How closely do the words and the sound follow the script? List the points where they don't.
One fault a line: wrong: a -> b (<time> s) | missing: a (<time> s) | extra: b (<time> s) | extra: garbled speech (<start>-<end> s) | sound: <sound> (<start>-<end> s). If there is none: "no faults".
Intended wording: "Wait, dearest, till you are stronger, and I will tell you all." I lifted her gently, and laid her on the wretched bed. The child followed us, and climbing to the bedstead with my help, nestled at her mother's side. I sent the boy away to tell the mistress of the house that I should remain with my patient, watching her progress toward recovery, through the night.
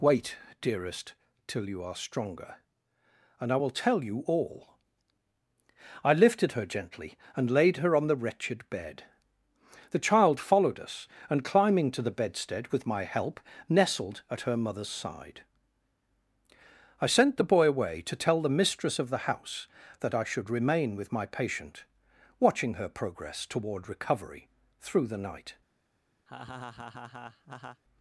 sound: laugh (26.3-27.8 s)